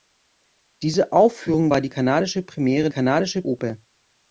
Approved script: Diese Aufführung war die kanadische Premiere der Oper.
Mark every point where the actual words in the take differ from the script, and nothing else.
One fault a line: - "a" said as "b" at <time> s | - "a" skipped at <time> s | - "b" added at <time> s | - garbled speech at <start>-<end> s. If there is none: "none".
- "der" said as "kanadische" at 2.9 s